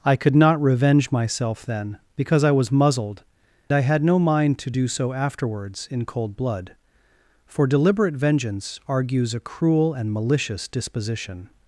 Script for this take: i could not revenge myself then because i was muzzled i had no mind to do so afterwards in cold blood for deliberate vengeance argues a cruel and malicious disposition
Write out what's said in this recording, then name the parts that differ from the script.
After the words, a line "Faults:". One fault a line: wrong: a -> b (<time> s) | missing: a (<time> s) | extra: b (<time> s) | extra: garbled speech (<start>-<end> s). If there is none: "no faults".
i could not revenge myself then because i was muzzled i had no mind to do so afterwards in cold blood for deliberate vengeance argues a cruel and malicious disposition
Faults:
no faults